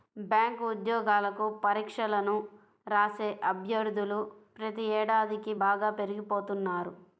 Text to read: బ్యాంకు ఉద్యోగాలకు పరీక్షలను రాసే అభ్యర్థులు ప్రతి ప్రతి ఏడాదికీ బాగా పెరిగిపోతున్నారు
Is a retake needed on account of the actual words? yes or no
yes